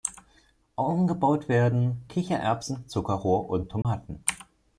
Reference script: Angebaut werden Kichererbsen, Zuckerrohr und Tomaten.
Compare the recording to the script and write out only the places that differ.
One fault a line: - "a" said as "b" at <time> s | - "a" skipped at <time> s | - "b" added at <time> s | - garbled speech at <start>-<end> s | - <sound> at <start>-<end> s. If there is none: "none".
- dropout at 3.8-3.8 s